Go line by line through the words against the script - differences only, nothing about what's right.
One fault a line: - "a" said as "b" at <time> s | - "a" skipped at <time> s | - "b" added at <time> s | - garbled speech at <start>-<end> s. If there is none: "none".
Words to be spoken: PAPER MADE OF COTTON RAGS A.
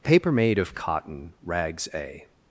none